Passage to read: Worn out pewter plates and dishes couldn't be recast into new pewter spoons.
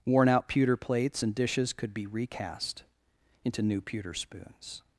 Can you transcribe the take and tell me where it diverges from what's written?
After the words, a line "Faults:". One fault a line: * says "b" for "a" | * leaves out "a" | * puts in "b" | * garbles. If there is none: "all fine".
Worn out pewter plates and dishes could be recast into new pewter spoons.
Faults:
* says "could" for "couldn't"